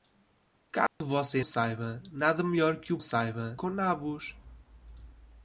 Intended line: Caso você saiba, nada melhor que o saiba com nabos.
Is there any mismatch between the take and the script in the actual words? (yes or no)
no